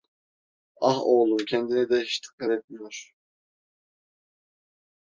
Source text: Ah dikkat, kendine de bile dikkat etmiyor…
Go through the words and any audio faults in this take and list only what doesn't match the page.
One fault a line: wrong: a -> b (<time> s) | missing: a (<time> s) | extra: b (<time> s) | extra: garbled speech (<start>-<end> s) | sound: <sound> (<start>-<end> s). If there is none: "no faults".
wrong: dikkat -> oğlum (1.0 s)
wrong: bile -> hiç (2.0 s)